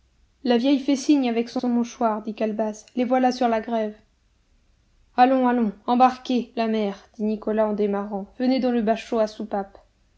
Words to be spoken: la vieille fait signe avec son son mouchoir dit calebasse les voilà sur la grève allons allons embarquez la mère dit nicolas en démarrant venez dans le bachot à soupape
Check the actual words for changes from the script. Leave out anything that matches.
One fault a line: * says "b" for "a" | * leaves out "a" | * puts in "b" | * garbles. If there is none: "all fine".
all fine